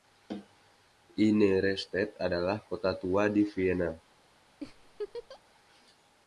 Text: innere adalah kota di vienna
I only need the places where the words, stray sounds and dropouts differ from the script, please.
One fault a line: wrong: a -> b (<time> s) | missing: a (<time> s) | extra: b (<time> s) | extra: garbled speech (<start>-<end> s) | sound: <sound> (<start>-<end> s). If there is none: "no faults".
extra: stadt (1.8 s)
extra: tua (3.0 s)
sound: laugh (4.6-5.4 s)